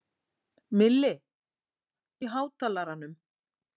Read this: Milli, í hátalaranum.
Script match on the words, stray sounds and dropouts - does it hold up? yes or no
yes